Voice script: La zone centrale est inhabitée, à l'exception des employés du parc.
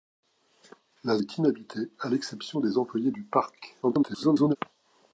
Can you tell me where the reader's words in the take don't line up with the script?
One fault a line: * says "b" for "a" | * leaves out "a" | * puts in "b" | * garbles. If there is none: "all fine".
* leaves out "zone centrale"
* garbles